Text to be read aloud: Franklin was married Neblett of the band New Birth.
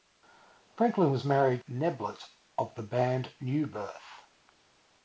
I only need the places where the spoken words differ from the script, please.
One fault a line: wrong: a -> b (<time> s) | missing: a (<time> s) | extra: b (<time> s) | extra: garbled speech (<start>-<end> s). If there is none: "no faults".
no faults